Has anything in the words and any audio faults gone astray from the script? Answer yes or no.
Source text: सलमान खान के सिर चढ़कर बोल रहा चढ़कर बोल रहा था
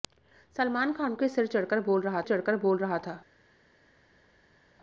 no